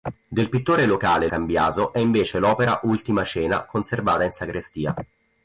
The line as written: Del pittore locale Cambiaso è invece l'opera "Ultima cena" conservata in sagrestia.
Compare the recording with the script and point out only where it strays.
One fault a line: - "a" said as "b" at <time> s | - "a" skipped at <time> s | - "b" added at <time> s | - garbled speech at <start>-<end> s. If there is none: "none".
none